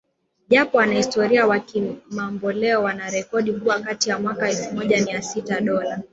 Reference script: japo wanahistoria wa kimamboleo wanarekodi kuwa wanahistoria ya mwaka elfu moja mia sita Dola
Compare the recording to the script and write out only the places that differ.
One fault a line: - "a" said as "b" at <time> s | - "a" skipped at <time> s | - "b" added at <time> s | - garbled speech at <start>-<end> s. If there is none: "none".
- "wanahistoria" said as "kati" at 3.8 s